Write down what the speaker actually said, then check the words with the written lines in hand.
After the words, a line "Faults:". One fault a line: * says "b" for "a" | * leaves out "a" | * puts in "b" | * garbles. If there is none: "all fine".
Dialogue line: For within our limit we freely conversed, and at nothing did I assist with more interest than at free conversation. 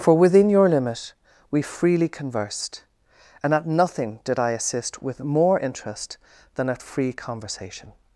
For within your limit we freely conversed, and at nothing did I assist with more interest than at free conversation.
Faults:
* says "your" for "our"